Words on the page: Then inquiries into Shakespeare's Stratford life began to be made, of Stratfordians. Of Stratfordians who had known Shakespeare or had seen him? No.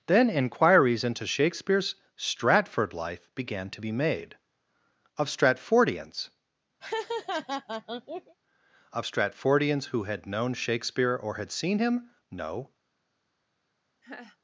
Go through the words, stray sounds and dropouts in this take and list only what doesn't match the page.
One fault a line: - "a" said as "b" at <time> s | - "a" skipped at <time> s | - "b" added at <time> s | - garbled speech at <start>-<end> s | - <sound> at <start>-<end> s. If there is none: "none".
- laugh at 6.8-8.4 s
- laugh at 14.0-14.4 s